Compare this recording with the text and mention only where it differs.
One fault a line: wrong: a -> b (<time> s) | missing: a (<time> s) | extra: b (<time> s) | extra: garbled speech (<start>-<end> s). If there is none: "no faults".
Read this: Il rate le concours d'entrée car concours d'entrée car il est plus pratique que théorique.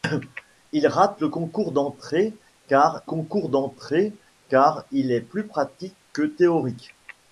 no faults